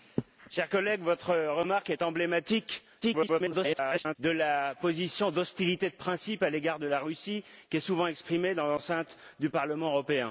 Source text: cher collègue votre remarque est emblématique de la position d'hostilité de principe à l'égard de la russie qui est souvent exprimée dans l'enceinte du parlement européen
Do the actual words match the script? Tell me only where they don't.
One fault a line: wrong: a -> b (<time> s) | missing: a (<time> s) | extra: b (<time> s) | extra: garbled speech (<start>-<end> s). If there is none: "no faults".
extra: garbled speech (3.0-4.2 s)